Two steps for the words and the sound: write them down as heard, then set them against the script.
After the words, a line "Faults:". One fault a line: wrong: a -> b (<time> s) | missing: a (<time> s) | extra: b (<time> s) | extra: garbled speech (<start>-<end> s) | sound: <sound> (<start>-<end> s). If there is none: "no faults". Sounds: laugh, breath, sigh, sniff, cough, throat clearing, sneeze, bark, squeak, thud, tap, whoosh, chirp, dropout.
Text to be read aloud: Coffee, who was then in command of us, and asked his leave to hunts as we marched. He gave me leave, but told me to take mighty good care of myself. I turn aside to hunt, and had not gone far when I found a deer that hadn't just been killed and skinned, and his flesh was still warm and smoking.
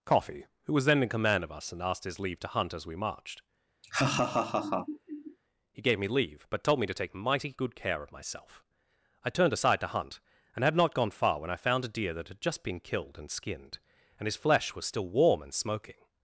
Coffee, who was then in command of us, and asked his leave to hunt as we marched. He gave me leave, but told me to take mighty good care of myself. I turned aside to hunt, and had not gone far when I found a deer that had just been killed and skinned, and his flesh was still warm and smoking.
Faults:
wrong: hunts -> hunt (2.5 s)
sound: laugh (3.8-5.4 s)
wrong: turn -> turned (9.3 s)
wrong: hadn't -> had (12.3 s)